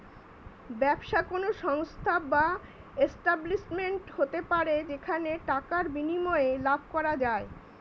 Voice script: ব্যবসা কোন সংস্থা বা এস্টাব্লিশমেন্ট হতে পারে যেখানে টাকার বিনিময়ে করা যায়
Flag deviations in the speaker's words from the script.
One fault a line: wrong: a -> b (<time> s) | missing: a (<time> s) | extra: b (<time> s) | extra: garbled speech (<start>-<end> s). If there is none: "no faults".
extra: লাভ (6.7 s)